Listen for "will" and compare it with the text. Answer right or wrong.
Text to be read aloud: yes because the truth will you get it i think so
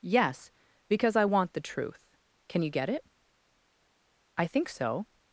wrong